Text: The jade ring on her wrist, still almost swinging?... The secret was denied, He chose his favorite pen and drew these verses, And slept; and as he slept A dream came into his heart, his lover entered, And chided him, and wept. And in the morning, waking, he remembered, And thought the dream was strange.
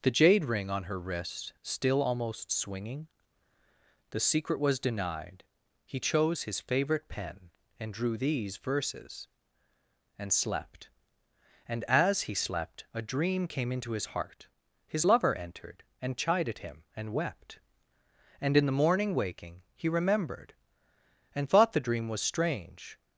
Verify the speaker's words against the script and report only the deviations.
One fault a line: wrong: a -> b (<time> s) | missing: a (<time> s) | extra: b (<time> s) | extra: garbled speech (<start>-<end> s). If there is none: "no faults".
no faults